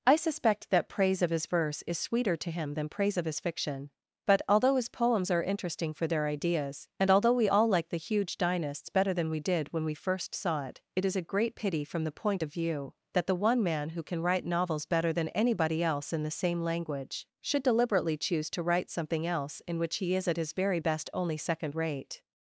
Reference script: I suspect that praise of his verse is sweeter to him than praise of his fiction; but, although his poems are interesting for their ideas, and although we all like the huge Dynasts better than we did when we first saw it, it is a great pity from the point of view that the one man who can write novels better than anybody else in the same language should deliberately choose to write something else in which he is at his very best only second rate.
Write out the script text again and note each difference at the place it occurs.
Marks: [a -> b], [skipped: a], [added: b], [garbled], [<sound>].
I suspect that praise of his verse is sweeter to him than praise of his fiction; but, although his poems are interesting for their ideas, and although we all like the huge Dynasts better than we did when we first saw it, it is a great pity from the point of view that the one man who can write novels better than anybody else in the same language should deliberately choose to write something else in which he is at his very best only second rate.